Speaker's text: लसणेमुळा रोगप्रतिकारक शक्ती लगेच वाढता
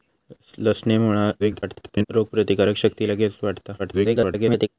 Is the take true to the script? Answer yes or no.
no